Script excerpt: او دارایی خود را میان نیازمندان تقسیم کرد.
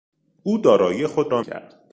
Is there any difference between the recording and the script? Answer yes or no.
yes